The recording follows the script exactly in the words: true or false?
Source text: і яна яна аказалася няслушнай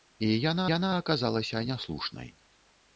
true